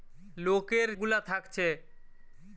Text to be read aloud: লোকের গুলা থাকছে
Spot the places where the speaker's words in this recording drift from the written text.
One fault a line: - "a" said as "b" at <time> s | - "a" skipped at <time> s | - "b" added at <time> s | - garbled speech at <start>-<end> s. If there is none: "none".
none